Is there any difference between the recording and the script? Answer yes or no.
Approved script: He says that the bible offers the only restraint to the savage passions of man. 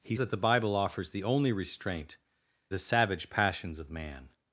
yes